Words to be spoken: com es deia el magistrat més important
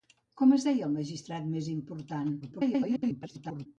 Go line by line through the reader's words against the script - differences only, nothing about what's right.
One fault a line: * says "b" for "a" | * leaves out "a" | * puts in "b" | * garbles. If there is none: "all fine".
* garbles